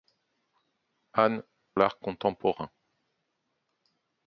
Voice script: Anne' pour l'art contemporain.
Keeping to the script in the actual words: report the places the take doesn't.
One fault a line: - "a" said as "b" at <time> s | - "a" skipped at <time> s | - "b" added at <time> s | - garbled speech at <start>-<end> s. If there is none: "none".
- "pour" skipped at 1.4 s